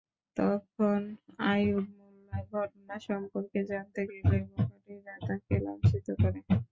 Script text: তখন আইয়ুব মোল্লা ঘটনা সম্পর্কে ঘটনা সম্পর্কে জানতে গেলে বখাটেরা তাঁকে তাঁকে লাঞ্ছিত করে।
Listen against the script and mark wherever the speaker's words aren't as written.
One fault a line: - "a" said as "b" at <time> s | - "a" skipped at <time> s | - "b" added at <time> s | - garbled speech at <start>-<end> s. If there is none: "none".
- "ঘটনা সম্পর্কে" skipped at 3.6 s
- "তাঁকে" skipped at 5.5 s